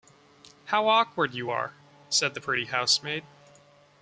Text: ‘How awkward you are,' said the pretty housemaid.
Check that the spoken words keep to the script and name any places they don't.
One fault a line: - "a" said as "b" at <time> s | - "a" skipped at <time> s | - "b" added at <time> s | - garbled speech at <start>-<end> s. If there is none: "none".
none